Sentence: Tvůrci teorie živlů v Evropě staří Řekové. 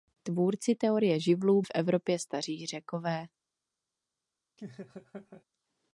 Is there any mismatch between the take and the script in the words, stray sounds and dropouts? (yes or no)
yes